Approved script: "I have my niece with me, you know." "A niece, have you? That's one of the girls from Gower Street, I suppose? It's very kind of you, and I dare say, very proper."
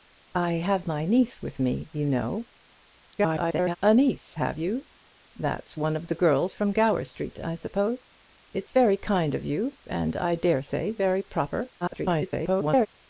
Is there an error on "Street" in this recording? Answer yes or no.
no